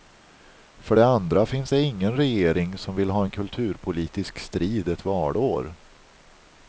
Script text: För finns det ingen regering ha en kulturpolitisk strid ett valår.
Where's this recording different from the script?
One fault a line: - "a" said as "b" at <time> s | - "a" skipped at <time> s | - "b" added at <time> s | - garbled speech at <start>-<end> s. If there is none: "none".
- "det andra" added at 0.9 s
- "som vill" added at 2.8 s